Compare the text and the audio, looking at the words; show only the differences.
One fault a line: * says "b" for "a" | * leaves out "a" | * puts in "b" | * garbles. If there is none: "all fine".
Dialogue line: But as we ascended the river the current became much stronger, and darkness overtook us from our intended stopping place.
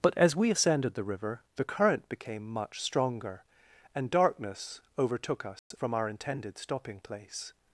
all fine